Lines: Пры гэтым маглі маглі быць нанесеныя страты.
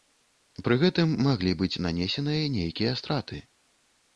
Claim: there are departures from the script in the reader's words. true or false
true